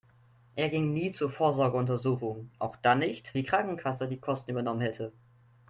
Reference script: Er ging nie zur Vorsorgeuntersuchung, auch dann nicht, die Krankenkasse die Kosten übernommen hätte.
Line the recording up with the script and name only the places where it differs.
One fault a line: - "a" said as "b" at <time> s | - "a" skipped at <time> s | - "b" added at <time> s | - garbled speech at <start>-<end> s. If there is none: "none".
none